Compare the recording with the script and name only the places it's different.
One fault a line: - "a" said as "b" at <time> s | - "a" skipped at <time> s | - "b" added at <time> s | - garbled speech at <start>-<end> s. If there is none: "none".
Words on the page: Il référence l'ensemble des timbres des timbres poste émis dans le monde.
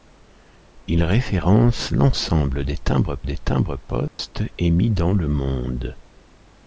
none